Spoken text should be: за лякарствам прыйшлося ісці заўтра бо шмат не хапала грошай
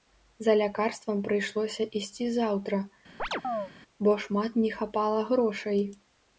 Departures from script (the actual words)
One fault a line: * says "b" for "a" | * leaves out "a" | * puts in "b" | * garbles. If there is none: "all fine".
all fine